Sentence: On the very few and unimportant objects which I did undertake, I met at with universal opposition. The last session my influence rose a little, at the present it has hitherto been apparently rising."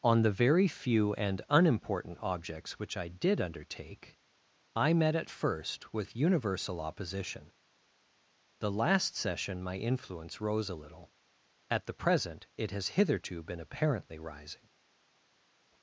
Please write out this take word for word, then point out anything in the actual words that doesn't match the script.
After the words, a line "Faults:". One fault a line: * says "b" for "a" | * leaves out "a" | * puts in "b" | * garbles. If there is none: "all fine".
On the very few and unimportant objects which I did undertake, I met at first with universal opposition. The last session my influence rose a little, at the present it has hitherto been apparently rising."
Faults:
* puts in "first"